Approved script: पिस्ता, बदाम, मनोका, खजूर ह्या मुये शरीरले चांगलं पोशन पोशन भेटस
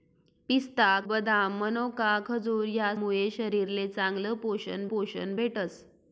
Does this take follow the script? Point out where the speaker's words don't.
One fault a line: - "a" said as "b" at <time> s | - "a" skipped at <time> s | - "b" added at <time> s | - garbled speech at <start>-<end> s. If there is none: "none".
none